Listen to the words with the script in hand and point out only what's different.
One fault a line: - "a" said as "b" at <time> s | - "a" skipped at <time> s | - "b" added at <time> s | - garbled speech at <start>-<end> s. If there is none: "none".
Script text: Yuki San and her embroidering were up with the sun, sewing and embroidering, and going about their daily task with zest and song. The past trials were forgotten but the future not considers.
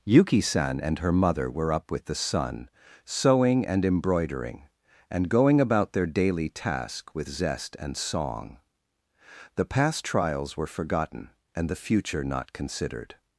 - "embroidering" said as "mother" at 1.1 s
- "but" said as "and" at 11.5 s
- "considers" said as "considered" at 12.5 s